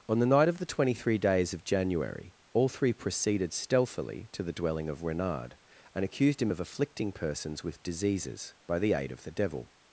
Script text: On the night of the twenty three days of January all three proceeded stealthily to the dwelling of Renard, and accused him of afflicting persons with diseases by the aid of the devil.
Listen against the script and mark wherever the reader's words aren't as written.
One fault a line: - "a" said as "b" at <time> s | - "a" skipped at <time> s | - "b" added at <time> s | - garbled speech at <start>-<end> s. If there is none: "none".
none